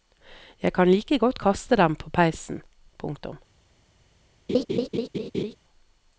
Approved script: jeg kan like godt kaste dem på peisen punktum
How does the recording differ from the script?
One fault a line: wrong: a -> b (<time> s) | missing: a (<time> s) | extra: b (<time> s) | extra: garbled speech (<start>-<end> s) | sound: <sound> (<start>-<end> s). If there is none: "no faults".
sound: laugh (4.5-5.6 s)